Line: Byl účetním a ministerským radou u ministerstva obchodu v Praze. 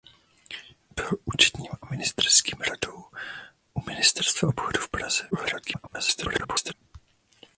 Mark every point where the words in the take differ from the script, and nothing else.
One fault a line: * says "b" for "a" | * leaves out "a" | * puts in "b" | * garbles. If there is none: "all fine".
* garbles